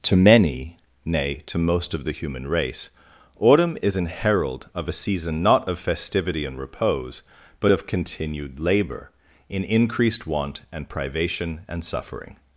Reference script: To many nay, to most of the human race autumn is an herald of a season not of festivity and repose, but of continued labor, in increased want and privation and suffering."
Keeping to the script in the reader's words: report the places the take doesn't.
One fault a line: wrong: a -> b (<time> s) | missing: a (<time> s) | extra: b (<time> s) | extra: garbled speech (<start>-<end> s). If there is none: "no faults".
no faults